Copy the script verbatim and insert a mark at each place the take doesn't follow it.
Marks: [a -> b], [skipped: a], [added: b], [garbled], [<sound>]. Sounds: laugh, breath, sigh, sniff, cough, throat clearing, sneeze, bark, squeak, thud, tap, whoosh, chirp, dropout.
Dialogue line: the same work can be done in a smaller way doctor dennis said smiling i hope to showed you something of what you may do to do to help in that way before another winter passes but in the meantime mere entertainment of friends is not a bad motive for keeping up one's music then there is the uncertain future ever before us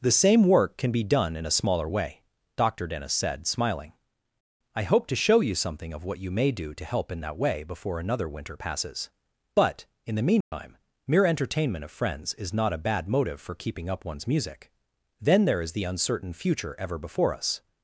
the same work can be done in a smaller way doctor dennis said smiling i hope to [showed -> show] you something of what you may do to [skipped: do to] help in that way before another winter passes but in the meantime [dropout] mere entertainment of friends is not a bad motive for keeping up one's music then there is the uncertain future ever before us